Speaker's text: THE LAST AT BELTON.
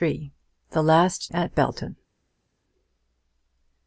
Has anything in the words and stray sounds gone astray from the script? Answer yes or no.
no